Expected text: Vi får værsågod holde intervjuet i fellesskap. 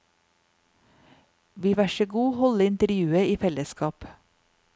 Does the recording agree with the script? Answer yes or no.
no